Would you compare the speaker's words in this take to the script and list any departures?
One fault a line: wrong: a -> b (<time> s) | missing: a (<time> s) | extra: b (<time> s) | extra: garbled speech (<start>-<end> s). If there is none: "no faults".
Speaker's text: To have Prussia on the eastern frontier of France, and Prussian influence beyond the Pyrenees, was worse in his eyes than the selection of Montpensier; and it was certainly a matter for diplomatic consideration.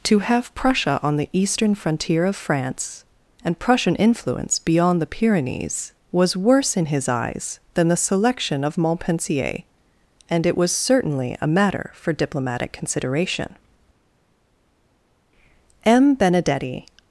extra: M Benedetti (15.8 s)